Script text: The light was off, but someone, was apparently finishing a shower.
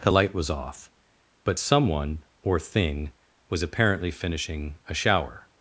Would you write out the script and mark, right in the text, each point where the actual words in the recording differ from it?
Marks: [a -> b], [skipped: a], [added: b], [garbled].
The light was off, but someone, [added: or thing] was apparently finishing a shower.